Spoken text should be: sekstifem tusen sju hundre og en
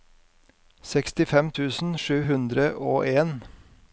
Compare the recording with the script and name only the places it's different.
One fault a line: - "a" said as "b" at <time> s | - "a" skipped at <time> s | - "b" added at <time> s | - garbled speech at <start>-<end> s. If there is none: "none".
none